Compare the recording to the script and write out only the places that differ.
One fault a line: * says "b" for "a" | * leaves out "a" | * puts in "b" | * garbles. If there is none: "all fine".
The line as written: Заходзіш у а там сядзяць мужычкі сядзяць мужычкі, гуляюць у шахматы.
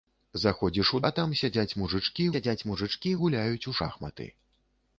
all fine